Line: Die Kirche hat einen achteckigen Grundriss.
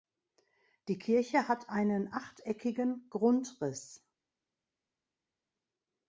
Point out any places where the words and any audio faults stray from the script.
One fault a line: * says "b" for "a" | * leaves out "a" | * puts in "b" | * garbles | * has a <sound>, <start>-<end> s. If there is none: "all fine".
all fine